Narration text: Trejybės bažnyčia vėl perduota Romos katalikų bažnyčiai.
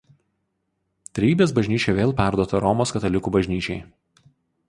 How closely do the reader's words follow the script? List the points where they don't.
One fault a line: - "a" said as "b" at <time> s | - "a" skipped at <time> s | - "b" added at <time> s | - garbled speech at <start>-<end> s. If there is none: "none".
none